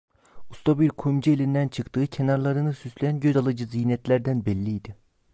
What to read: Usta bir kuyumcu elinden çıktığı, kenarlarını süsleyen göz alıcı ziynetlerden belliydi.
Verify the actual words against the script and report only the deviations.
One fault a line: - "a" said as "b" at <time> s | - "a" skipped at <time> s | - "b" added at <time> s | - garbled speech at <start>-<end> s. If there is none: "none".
none